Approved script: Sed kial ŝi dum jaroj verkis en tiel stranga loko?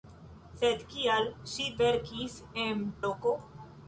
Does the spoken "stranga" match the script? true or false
false